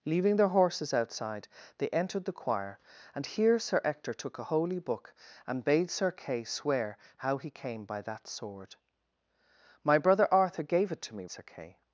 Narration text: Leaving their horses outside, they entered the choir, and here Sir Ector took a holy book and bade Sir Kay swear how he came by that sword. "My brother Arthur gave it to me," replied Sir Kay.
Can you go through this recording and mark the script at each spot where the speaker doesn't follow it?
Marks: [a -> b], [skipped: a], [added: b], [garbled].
Leaving their horses outside, they entered the choir, and here Sir Ector took a holy book and bade Sir Kay swear how he came by that sword. "My brother Arthur gave it to me," [skipped: replied] Sir Kay.